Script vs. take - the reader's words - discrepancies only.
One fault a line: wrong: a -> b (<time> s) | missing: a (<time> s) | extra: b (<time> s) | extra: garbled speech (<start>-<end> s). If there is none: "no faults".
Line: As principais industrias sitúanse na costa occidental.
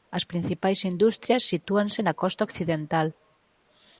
no faults